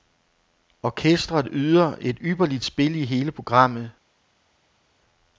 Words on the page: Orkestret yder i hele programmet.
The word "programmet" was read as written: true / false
true